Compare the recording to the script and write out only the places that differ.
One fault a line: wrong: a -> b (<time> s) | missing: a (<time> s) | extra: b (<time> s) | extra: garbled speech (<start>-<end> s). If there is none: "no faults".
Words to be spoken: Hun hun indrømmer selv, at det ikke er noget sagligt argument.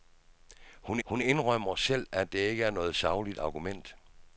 no faults